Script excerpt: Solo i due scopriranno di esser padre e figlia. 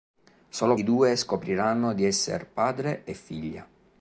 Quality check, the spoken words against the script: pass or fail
pass